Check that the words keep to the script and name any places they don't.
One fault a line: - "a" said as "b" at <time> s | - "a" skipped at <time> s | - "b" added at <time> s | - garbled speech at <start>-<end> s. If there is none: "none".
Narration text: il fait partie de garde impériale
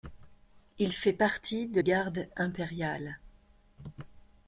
none